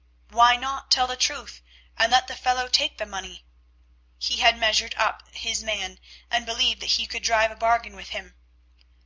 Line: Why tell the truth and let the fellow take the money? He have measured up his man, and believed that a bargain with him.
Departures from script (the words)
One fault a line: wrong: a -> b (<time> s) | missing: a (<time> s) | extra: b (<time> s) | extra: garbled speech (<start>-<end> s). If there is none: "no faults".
extra: not (0.6 s)
wrong: have -> had (4.4 s)
extra: he could drive (6.9 s)